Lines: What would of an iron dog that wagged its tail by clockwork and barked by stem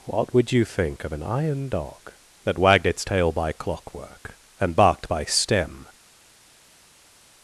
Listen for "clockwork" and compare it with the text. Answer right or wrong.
right